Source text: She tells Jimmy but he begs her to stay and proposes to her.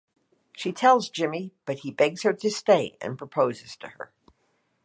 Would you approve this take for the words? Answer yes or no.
yes